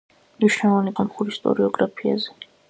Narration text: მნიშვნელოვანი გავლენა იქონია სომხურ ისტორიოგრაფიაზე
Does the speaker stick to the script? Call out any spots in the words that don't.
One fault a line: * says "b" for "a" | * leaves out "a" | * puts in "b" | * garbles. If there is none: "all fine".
* leaves out "გავლენა იქონია"